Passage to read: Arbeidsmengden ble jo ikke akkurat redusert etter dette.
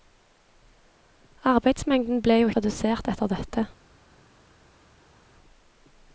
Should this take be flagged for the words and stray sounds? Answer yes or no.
yes